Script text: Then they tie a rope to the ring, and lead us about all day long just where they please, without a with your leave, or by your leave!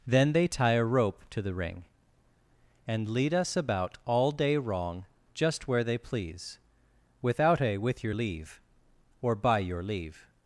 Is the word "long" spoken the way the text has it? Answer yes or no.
no